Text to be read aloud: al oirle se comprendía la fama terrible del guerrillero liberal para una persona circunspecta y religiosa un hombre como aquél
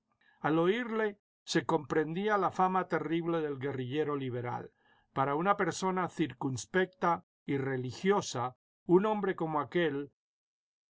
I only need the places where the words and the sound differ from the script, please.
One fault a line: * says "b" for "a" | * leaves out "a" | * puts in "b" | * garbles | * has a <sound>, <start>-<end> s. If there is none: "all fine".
all fine